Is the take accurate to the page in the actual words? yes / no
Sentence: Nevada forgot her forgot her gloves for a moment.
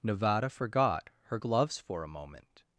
no